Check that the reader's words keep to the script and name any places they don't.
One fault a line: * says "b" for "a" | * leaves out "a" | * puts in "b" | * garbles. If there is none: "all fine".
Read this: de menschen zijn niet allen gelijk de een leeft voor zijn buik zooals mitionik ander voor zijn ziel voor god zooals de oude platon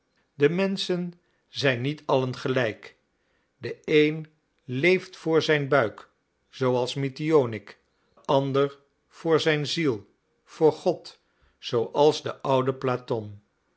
all fine